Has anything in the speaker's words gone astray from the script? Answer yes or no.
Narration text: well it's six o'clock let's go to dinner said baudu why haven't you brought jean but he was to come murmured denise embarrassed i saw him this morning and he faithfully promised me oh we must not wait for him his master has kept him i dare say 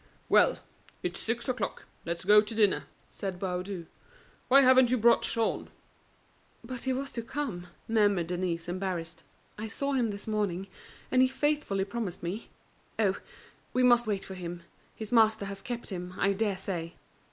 yes